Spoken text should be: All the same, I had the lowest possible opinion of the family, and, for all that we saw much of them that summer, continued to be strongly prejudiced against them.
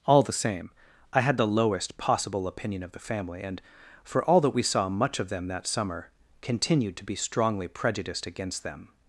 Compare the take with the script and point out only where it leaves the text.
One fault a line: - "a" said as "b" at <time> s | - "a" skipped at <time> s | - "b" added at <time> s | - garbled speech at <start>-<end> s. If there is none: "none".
none